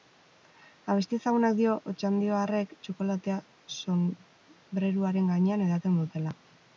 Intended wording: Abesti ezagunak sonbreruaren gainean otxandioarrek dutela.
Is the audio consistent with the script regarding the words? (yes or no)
no